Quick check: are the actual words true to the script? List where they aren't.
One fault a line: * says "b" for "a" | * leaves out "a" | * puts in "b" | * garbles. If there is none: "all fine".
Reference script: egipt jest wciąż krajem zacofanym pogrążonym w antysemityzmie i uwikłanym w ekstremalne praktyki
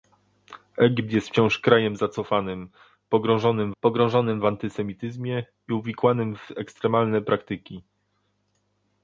* puts in "pogrążonym"